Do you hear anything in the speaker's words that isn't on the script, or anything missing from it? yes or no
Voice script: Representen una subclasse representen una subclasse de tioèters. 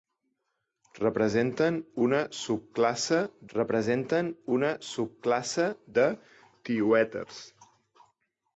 no